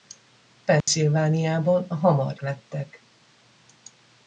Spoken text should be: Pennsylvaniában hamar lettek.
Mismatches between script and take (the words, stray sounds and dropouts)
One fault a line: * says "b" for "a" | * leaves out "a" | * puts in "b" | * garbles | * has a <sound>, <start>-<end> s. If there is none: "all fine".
* has a dropout, 0.8-0.9 s